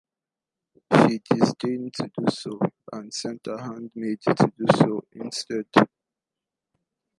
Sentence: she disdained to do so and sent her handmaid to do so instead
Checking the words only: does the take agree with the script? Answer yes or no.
yes